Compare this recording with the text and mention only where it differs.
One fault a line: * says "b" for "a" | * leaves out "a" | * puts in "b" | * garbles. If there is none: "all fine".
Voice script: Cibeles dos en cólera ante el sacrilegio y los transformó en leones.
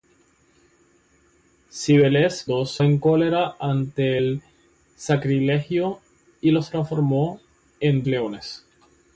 all fine